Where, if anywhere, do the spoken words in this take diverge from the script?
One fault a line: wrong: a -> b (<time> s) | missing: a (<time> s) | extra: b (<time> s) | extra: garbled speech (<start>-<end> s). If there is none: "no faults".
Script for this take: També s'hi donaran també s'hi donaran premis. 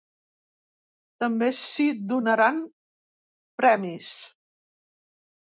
missing: també s'hi donaran (2.6 s)